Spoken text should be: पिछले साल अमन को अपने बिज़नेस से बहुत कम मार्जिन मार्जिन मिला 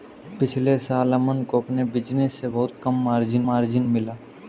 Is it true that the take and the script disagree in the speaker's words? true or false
false